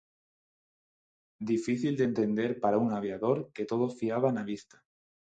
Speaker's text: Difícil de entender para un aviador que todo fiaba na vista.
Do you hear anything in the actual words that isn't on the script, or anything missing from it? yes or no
no